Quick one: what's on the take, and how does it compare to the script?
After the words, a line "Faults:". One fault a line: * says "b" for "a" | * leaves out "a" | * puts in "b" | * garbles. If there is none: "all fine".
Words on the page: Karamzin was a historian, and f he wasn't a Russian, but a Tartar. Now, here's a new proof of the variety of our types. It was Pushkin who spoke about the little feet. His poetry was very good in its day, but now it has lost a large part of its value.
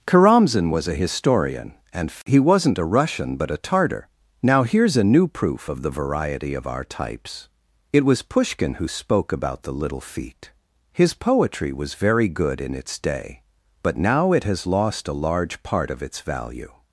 Karamzin was a historian, and he wasn't a Russian, but a Tartar. Now, here's a new proof of the variety of our types. It was Pushkin who spoke about the little feet. His poetry was very good in its day, but now it has lost a large part of its value.
Faults:
* leaves out "f"